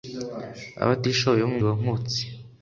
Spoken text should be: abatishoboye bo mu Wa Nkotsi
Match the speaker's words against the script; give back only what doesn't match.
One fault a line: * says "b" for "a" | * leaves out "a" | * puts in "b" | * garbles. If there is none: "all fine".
all fine